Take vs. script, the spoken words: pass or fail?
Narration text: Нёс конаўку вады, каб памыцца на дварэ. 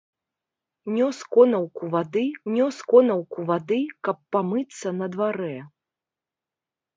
fail